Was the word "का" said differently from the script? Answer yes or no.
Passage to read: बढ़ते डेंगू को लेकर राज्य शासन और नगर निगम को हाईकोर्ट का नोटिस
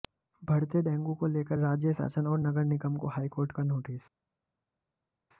no